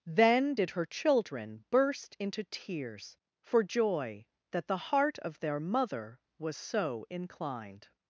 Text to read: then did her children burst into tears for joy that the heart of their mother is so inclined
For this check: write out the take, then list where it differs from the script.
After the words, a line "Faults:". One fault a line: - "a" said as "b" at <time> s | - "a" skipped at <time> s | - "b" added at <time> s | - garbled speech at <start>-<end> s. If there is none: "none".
then did her children burst into tears for joy that the heart of their mother was so inclined
Faults:
- "is" said as "was" at 6.4 s